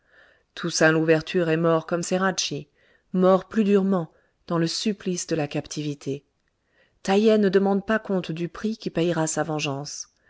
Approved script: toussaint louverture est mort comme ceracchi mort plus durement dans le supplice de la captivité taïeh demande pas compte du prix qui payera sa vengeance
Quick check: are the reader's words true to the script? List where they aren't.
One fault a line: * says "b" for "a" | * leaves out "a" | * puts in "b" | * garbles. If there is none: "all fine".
* puts in "ne"